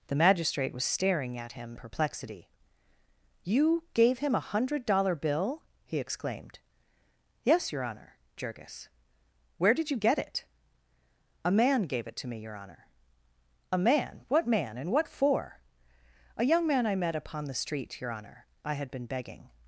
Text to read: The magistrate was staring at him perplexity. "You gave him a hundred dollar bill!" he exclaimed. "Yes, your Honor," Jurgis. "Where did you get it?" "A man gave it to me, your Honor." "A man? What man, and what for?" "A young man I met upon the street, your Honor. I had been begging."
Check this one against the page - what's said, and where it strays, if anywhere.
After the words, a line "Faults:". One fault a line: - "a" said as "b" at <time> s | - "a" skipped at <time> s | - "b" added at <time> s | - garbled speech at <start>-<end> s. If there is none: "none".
The magistrate was staring at him perplexity. "You gave him a hundred dollar bill!" he exclaimed. "Yes, your Honor," Jurgis. "Where did you get it?" "A man gave it to me, your Honor." "A man? What man, and what for?" "A young man I met upon the street, your Honor. I had been begging."
Faults:
none